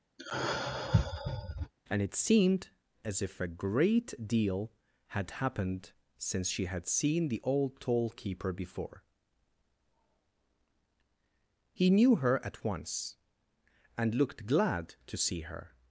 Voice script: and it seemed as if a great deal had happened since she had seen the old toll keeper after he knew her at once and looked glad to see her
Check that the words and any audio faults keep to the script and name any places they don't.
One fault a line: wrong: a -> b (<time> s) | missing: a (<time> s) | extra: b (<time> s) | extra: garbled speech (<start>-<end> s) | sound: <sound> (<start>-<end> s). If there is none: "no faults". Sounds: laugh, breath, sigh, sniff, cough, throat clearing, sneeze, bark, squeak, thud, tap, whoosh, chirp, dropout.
sound: sigh (0.2-1.7 s)
wrong: after -> before (8.5 s)